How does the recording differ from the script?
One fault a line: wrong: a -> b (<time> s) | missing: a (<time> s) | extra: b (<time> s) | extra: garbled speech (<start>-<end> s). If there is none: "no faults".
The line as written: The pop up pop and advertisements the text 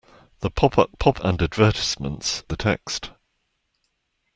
no faults